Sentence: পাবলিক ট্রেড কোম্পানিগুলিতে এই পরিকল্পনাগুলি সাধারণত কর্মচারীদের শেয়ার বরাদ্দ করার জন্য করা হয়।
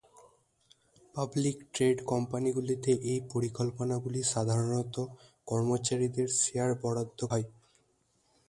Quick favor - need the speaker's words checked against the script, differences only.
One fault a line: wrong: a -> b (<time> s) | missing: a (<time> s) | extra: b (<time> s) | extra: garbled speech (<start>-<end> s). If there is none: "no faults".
missing: করার জন্য করা (7.2 s)